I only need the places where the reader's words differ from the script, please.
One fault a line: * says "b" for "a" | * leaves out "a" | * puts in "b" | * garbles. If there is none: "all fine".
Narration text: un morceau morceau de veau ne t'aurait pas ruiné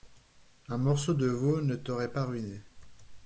* leaves out "morceau"